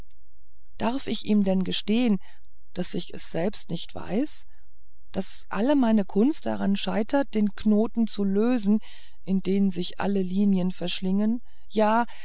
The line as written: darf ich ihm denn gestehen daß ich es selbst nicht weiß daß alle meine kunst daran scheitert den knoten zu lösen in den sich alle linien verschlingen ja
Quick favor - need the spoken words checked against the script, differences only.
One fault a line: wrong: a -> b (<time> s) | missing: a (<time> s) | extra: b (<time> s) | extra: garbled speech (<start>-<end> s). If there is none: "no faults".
no faults